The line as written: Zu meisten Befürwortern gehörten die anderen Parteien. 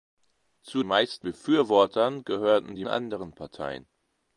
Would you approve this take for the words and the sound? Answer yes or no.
yes